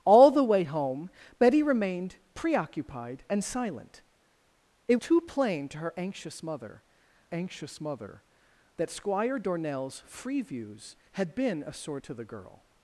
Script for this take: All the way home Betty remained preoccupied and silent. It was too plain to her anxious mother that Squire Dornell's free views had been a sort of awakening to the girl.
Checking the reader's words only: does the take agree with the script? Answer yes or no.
no